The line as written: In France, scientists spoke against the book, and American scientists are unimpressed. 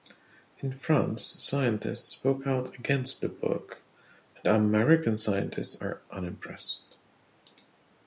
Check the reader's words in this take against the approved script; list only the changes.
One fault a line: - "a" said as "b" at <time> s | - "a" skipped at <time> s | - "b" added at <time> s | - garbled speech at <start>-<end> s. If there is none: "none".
- "out" added at 2.5 s